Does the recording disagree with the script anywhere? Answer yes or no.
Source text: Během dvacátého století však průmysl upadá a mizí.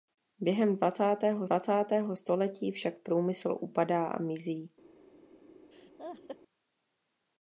yes